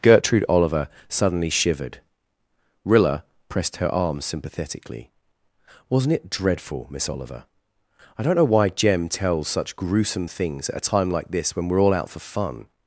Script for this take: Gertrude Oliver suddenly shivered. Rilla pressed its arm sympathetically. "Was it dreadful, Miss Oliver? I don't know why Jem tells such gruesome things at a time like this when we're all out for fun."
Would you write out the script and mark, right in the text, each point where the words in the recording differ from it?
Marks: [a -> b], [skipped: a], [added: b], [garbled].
Gertrude Oliver suddenly shivered. Rilla pressed [its -> her] arm sympathetically. ["Was -> Wasn't] it dreadful, Miss Oliver? I don't know why Jem tells such gruesome things at a time like this when we're all out for fun."